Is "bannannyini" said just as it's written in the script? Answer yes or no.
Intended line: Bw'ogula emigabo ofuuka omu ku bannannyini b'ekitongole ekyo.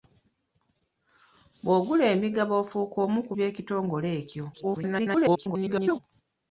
no